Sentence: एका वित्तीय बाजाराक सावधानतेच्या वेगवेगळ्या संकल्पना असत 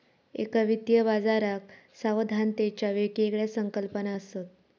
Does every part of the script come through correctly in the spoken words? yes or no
yes